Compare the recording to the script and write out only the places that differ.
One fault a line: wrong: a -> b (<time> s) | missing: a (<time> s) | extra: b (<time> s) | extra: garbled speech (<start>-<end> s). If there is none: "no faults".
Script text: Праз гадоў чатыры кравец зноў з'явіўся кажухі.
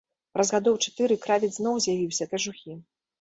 no faults